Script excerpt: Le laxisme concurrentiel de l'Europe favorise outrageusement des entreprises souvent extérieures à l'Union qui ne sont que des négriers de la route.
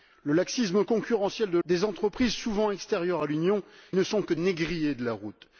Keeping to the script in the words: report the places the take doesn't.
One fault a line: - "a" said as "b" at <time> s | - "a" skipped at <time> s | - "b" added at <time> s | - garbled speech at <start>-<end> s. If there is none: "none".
- "l'Europe favorise outrageusement" skipped at 1.6 s
- "qui" skipped at 3.6 s
- "des" skipped at 4.3 s